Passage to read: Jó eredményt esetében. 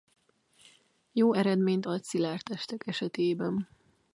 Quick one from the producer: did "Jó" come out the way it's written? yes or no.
yes